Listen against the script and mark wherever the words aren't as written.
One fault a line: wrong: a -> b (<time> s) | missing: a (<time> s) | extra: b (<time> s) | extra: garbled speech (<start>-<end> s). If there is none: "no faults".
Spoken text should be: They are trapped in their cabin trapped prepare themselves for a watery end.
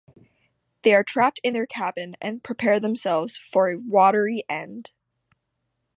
wrong: trapped -> and (2.2 s)